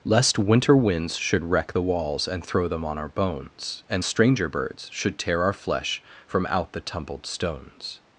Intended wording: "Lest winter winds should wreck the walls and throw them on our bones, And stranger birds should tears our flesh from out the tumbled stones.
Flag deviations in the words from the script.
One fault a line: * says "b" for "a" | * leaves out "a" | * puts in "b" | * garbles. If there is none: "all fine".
* says "tear" for "tears"